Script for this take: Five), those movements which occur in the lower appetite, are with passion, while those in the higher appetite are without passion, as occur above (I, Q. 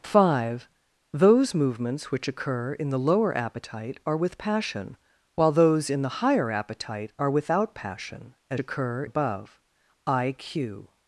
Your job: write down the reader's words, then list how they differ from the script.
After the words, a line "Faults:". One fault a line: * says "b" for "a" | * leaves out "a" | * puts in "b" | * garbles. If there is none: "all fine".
Five), those movements which occur in the lower appetite, are with passion, while those in the higher appetite are without passion, as occur above (I, Q.
Faults:
all fine